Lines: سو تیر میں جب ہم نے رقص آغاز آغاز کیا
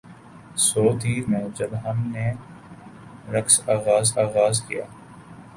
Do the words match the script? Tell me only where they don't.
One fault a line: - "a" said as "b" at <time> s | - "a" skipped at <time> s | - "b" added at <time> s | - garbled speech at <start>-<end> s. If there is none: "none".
none